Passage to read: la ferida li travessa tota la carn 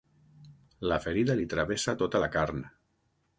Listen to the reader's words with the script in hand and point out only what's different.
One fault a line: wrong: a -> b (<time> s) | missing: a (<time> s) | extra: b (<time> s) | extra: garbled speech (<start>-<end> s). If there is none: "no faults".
no faults